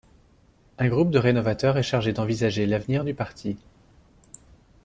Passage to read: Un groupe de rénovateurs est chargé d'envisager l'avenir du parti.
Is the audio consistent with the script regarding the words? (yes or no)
yes